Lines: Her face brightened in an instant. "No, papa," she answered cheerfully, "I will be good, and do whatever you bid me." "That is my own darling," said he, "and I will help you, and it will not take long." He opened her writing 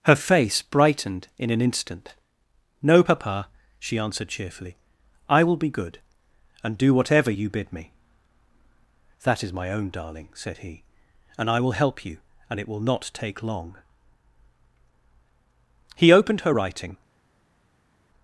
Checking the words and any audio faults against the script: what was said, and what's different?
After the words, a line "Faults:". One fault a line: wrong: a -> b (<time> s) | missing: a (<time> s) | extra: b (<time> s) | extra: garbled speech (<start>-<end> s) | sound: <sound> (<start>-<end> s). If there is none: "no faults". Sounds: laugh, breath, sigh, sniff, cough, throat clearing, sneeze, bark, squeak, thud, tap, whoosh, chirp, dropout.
Her face brightened in an instant. "No, papa," she answered cheerfully, "I will be good, and do whatever you bid me." "That is my own darling," said he, "and I will help you, and it will not take long." He opened her writing
Faults:
no faults